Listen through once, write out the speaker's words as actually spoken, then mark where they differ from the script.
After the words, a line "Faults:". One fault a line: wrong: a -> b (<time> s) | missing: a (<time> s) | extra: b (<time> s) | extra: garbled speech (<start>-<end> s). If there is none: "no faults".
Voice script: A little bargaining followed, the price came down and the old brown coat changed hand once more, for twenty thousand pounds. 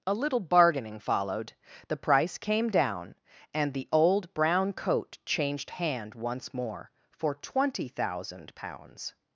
A little bargaining followed, the price came down and the old brown coat changed hand once more, for twenty thousand pounds.
Faults:
no faults